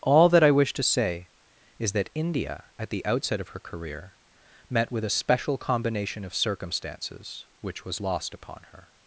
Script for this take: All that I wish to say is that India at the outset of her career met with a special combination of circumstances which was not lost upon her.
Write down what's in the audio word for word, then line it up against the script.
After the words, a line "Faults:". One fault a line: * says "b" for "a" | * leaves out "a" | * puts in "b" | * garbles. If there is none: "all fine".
All that I wish to say is that India at the outset of her career met with a special combination of circumstances which was lost upon her.
Faults:
* leaves out "not"